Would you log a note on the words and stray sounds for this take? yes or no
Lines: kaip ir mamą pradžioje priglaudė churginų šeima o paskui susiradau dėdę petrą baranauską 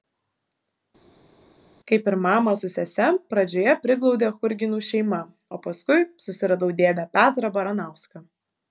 yes